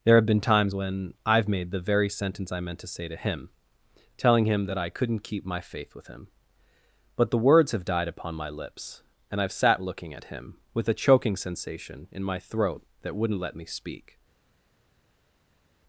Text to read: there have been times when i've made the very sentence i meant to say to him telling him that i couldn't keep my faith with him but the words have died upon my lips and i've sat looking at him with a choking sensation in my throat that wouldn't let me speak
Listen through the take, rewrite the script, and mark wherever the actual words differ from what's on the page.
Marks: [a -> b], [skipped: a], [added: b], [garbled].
there have been times when i've made the very sentence i meant to say to him telling him that i couldn't keep my faith with him but the words have died upon my lips and i've sat looking at him with a choking sensation in my throat that wouldn't let me speak